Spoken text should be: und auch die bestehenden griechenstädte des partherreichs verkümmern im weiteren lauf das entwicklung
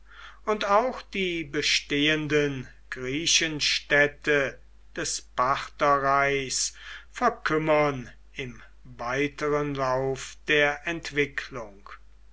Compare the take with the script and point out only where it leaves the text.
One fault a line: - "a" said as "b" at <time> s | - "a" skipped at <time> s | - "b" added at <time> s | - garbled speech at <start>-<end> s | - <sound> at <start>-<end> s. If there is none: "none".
- "das" said as "der" at 10.5 s